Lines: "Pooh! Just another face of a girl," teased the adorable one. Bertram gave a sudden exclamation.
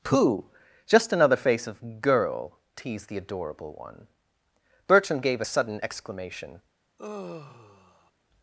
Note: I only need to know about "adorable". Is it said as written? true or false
true